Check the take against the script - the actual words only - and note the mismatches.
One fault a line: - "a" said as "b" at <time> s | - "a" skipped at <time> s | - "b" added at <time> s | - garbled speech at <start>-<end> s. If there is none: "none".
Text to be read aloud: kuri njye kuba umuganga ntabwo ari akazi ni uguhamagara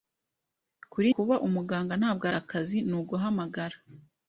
- "njye" skipped at 1.1 s
- "ari" skipped at 2.2 s